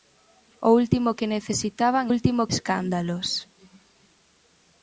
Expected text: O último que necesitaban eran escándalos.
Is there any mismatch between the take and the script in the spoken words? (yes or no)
yes